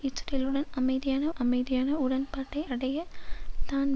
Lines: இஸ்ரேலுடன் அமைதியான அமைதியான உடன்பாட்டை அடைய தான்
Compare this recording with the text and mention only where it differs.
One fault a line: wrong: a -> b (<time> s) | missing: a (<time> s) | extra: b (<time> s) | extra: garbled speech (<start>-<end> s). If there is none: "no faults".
no faults